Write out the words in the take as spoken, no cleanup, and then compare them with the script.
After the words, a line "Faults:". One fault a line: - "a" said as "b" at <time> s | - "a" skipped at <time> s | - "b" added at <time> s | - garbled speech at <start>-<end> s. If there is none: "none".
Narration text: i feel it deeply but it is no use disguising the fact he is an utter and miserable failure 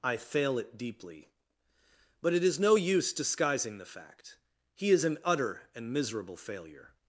i fail it deeply but it is no use disguising the fact he is an utter and miserable failure
Faults:
- "feel" said as "fail" at 0.2 s